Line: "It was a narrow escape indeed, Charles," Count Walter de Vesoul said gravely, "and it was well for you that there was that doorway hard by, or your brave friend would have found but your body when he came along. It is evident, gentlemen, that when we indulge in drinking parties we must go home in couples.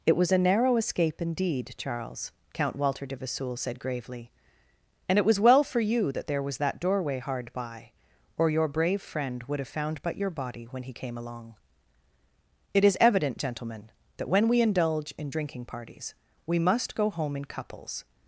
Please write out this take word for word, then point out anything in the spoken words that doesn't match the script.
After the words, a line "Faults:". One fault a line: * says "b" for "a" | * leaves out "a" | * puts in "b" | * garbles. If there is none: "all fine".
"It was a narrow escape indeed, Charles," Count Walter de Vesoul said gravely, "and it was well for you that there was that doorway hard by, or your brave friend would have found but your body when he came along. It is evident, gentlemen, that when we indulge in drinking parties we must go home in couples.
Faults:
all fine